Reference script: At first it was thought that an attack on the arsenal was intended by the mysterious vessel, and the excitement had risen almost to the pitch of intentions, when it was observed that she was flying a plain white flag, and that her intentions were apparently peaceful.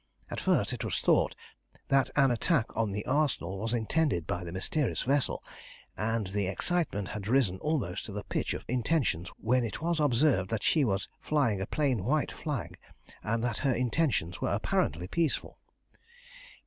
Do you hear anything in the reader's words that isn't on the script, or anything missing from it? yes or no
no